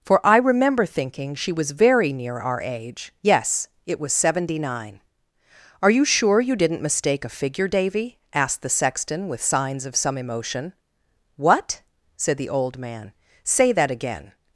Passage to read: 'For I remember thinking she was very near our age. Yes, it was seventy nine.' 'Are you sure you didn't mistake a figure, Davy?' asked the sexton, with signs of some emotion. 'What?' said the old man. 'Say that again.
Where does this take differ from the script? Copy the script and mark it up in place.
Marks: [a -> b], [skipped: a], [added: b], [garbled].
'For I remember thinking she was very near our age. Yes, it was seventy nine.' 'Are you sure you didn't mistake a figure, Davy?' asked the sexton, with signs of some emotion. 'What?' said the old man. 'Say that again.